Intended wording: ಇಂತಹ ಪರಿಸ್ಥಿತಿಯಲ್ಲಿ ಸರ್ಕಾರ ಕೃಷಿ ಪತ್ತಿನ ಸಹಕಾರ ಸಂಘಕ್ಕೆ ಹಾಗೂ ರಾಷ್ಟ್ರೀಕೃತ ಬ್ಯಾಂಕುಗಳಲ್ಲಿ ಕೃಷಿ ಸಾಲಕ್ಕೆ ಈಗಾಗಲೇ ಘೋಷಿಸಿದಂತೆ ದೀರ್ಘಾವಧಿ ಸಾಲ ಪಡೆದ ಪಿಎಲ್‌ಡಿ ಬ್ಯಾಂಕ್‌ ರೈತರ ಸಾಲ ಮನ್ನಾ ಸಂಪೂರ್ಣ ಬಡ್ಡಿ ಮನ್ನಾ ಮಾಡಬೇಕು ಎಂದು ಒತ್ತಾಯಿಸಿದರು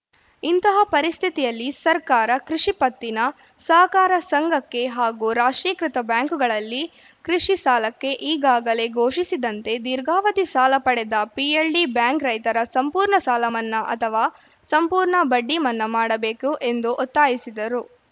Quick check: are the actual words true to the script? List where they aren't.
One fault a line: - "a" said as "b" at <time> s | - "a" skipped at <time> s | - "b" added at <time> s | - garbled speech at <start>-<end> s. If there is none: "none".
- "ಸಂಪೂರ್ಣ" added at 12.7 s
- "ಅಥವಾ" added at 13.9 s